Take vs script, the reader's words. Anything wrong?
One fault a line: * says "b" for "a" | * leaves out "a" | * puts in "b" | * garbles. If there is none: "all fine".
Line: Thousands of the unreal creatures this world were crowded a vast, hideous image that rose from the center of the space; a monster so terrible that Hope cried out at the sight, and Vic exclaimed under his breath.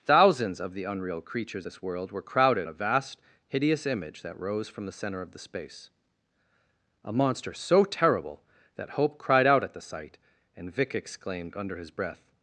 all fine